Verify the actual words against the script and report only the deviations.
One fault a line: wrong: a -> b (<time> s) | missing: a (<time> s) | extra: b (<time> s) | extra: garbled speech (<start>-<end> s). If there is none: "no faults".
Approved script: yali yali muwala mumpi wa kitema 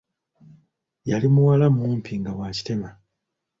missing: yali (1.3 s)
extra: nga (2.2 s)